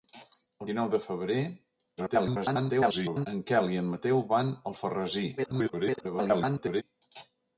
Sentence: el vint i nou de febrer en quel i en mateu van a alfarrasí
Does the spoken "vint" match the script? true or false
false